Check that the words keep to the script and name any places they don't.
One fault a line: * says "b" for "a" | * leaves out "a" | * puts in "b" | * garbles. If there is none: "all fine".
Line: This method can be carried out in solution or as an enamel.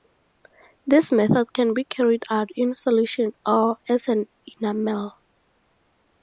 all fine